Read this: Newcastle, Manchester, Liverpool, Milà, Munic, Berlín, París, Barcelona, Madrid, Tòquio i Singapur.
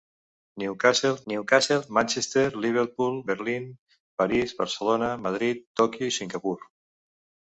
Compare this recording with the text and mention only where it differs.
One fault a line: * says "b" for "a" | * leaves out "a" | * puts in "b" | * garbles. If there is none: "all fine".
* puts in "newcastle"
* leaves out "Milà Munic"